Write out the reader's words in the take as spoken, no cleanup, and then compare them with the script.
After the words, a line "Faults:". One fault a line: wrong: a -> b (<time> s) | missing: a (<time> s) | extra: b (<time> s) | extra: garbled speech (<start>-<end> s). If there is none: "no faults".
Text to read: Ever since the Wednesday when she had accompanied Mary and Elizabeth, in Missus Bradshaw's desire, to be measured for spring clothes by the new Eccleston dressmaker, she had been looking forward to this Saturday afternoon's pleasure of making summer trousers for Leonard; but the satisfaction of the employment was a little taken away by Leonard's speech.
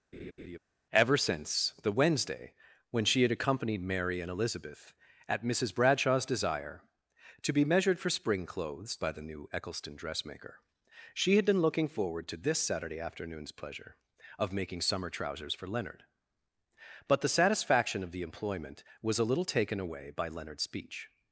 Ever since the Wednesday when she had accompanied Mary and Elizabeth, at Missus Bradshaw's desire, to be measured for spring clothes by the new Eccleston dressmaker, she had been looking forward to this Saturday afternoon's pleasure of making summer trousers for Leonard; but the satisfaction of the employment was a little taken away by Leonard's speech.
Faults:
wrong: in -> at (5.3 s)